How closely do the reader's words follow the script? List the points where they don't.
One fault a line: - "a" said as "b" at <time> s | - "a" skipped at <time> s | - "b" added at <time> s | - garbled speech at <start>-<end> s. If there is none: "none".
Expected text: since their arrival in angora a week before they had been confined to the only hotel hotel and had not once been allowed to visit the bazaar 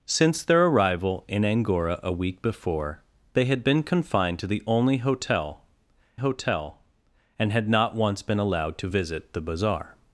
none